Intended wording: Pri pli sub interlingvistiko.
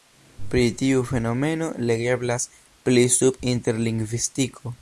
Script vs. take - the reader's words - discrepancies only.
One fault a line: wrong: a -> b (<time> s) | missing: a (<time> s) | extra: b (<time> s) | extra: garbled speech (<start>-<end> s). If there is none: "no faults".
extra: tiu fenomeno legeblas (0.8 s)